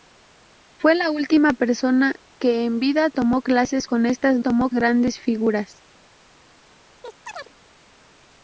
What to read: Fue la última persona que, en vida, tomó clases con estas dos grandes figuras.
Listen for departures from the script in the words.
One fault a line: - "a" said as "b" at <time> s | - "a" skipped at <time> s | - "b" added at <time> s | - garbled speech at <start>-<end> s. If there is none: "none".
- "dos" said as "tomó" at 4.4 s